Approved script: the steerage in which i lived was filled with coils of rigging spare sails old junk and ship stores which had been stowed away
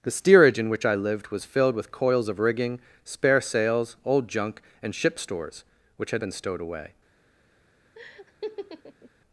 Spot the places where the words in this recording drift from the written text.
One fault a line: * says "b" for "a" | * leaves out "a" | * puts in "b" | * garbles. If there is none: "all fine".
all fine